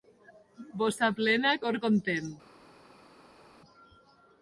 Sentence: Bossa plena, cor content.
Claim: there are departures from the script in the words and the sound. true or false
false